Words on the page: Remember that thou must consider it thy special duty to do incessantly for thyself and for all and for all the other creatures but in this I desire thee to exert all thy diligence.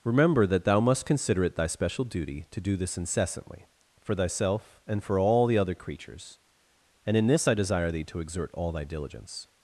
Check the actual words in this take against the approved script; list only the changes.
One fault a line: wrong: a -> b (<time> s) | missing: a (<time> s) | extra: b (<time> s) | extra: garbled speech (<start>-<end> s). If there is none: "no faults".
extra: this (2.8 s)
missing: and for all (5.5 s)
wrong: but -> and (7.0 s)